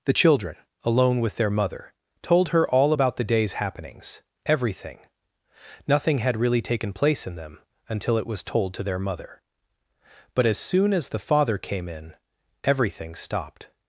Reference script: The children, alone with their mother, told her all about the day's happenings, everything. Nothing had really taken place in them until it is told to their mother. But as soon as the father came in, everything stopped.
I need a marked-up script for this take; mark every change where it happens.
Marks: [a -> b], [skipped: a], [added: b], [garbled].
The children, alone with their mother, told her all about the day's happenings, everything. Nothing had really taken place in them until it [is -> was] told to their mother. But as soon as the father came in, everything stopped.